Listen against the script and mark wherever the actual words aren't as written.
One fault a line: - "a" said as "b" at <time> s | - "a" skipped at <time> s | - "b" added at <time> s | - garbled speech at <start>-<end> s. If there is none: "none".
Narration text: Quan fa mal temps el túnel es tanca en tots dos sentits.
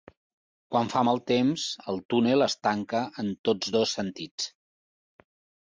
none